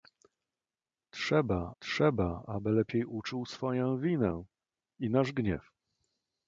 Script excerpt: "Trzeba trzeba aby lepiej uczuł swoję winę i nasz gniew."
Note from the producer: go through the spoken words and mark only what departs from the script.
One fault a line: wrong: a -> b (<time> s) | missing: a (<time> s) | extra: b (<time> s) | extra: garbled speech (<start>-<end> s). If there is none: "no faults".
no faults